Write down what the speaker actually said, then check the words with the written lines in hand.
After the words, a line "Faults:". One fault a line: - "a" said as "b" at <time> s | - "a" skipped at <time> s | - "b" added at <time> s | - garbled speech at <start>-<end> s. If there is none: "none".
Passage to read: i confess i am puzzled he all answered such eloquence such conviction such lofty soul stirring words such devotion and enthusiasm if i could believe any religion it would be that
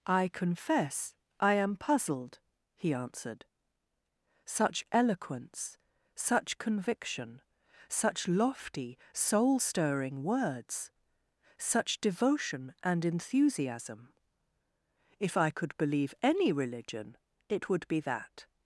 i confess i am puzzled he answered such eloquence such conviction such lofty soul stirring words such devotion and enthusiasm if i could believe any religion it would be that
Faults:
- "all" skipped at 2.9 s